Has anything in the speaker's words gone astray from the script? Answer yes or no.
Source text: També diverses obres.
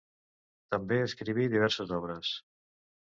yes